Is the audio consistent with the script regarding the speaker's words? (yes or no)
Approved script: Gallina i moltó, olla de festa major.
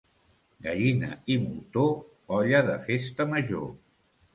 yes